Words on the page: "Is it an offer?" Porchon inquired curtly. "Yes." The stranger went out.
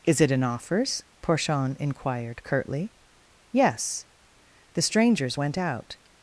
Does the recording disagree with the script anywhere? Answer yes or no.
yes